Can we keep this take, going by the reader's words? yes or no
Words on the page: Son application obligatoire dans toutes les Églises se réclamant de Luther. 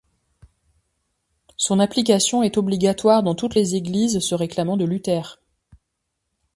no